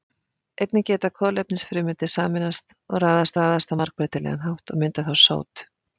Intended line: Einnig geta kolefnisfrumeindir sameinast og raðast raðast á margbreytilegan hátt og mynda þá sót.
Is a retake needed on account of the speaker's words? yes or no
no